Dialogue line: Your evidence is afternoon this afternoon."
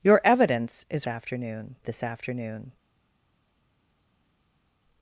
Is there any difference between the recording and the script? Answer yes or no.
no